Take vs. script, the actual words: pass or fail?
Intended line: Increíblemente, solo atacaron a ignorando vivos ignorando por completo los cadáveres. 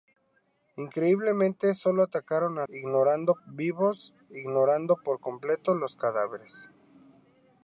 pass